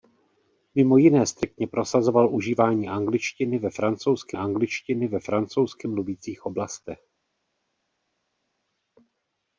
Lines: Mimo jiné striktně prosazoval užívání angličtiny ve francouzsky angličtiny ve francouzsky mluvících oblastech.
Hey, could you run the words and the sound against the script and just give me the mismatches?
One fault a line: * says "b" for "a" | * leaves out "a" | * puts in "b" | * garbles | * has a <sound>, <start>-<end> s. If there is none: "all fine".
all fine